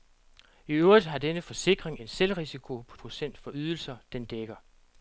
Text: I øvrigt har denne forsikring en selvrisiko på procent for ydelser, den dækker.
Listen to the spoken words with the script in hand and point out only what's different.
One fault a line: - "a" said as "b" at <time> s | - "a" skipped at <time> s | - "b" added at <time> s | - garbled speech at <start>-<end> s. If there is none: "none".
none